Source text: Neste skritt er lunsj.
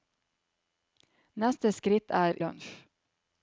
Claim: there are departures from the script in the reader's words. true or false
false